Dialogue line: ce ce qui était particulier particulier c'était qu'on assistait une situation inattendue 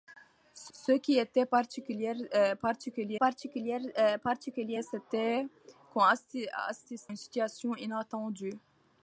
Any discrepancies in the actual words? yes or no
no